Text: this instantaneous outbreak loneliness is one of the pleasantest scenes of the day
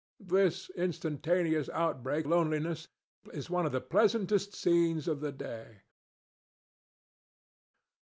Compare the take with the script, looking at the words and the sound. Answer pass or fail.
pass